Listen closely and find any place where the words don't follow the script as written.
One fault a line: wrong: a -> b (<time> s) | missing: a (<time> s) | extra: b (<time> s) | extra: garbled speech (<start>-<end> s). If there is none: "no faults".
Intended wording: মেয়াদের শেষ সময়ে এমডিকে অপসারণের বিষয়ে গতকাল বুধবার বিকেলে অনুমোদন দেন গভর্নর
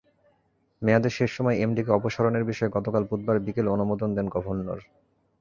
no faults